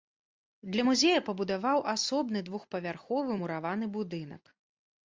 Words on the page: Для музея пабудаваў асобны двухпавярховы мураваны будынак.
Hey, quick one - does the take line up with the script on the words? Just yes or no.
yes